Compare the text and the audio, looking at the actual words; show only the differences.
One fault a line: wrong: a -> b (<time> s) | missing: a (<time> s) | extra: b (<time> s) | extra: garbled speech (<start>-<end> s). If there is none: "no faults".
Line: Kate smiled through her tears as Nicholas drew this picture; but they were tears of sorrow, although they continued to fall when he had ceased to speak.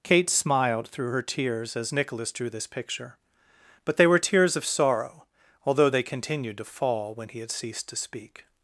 no faults